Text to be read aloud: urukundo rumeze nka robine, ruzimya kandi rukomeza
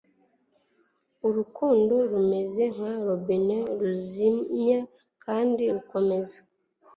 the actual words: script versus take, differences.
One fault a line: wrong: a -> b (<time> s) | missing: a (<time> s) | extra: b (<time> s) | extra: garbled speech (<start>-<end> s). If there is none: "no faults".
no faults